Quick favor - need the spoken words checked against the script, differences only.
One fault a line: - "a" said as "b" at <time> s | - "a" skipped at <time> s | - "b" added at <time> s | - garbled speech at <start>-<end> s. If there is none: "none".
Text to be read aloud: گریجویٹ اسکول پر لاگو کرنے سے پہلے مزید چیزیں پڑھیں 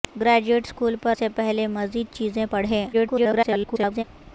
- "لاگو کرنے" skipped at 1.1 s
- garbled speech at 2.9-4.0 s